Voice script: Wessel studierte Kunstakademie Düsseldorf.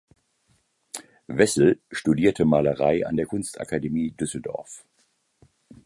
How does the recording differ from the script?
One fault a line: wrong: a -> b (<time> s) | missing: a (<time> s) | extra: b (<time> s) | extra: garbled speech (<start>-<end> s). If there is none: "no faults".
extra: Malerei an der (2.4 s)